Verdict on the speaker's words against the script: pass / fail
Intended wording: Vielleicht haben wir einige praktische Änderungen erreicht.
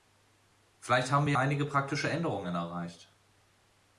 pass